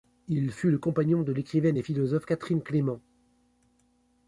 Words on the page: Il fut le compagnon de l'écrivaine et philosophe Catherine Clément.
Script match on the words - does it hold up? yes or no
yes